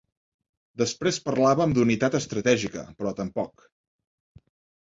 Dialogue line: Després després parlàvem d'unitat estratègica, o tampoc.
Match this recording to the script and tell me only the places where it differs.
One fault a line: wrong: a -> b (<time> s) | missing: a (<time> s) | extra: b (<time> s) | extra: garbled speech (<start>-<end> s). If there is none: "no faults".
missing: després (1.2 s)
wrong: o -> però (3.0 s)